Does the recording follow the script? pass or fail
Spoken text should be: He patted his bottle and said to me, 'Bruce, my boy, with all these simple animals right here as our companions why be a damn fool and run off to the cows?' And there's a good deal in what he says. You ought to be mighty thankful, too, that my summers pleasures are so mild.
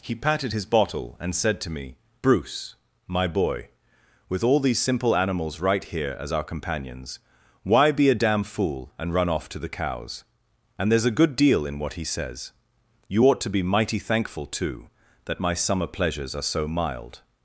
fail